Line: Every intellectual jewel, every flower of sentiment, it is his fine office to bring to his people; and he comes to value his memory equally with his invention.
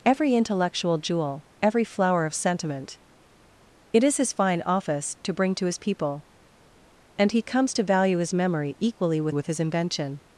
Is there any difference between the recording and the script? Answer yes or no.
yes